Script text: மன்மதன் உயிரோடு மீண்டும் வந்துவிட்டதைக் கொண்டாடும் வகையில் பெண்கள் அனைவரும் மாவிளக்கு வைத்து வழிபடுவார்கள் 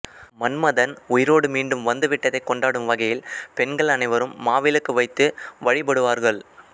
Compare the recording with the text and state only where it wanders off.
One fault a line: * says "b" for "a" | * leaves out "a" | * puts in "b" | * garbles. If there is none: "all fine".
all fine